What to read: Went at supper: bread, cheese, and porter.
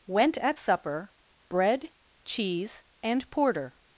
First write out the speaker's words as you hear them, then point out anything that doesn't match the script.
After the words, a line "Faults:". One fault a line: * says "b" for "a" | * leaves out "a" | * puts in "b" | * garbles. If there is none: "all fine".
Went at supper: bread, cheese, and porter.
Faults:
all fine